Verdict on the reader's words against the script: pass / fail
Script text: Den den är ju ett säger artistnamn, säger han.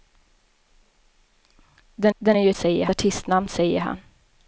pass